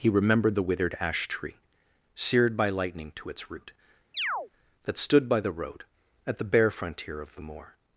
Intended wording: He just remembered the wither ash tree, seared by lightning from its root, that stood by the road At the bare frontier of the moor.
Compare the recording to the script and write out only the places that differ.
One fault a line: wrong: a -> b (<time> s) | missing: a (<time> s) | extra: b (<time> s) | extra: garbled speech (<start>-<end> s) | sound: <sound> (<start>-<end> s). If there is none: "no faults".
missing: just (0.1 s)
wrong: wither -> withered (0.6 s)
wrong: from -> to (3.1 s)
sound: chirp (4.1-4.5 s)